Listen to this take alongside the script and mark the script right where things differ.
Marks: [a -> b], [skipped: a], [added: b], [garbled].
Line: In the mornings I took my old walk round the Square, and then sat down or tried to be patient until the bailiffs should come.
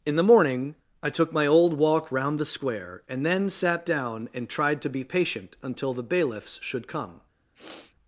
In the [mornings -> morning] I took my old walk round the Square, and then sat down [or -> and] tried to be patient until the bailiffs should come.